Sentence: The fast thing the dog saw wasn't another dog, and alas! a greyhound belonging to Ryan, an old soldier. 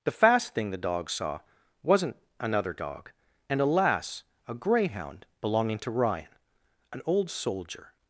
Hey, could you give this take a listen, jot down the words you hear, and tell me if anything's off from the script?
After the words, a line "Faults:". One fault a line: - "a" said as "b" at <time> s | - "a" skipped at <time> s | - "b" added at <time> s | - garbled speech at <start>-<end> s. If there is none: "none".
The fast thing the dog saw wasn't another dog, and alas! a greyhound belonging to Ryan, an old soldier.
Faults:
none